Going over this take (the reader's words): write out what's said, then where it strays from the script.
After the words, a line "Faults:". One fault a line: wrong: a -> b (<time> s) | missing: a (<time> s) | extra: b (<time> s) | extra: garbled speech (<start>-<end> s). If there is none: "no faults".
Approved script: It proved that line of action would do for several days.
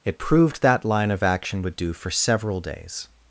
It proved that line of action would do for several days.
Faults:
no faults